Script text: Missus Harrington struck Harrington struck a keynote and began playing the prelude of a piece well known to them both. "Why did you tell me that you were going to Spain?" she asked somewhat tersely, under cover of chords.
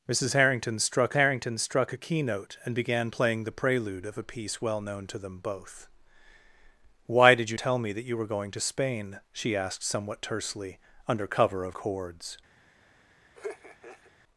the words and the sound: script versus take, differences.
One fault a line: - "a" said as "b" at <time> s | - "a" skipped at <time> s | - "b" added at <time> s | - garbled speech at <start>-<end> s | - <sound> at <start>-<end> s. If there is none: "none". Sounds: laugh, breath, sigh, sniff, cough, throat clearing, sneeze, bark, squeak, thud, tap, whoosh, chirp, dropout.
- laugh at 13.3-14.1 s